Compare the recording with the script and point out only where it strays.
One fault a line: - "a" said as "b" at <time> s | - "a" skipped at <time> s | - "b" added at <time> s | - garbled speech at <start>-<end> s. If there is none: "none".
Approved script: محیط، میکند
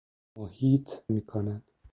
none